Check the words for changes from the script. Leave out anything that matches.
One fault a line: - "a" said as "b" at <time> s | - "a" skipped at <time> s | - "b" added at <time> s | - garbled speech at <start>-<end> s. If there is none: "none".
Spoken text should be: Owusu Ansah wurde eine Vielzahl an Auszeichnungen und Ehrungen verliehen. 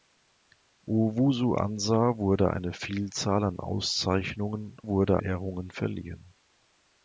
- "und" said as "wurde" at 4.9 s